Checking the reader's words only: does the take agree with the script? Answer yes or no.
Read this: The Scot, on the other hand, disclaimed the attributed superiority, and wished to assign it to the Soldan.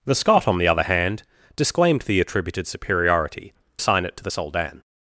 no